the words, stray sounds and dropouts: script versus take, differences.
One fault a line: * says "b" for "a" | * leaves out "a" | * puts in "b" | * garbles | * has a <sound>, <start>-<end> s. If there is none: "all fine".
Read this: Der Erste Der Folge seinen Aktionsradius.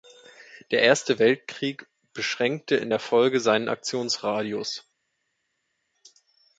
* puts in "Weltkrieg beschränkte in"